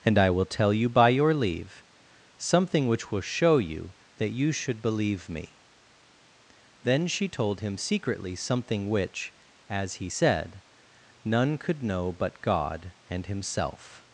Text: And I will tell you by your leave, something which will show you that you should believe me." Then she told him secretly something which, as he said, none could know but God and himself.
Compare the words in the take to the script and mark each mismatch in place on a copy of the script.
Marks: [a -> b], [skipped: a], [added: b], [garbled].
And I will tell you by your leave, something which will show you that you should believe me." Then she told him secretly something which, as he said, none could know but God and himself.